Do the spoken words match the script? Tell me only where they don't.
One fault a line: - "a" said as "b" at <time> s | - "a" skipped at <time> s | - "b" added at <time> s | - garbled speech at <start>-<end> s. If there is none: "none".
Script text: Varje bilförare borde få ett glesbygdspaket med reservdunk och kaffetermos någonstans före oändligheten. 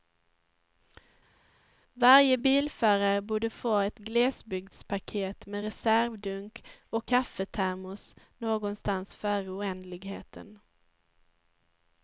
none